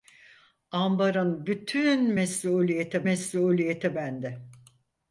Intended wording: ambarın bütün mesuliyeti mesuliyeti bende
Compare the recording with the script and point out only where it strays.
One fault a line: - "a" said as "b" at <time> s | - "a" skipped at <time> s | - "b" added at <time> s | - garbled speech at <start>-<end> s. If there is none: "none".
none